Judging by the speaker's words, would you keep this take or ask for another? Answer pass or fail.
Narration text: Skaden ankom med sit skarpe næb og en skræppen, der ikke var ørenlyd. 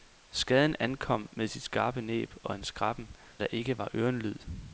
pass